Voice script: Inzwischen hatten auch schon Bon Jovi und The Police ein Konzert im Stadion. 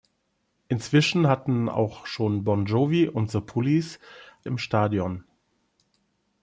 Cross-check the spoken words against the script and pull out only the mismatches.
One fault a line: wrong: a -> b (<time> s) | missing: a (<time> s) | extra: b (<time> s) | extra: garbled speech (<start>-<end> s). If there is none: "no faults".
missing: ein Konzert (4.0 s)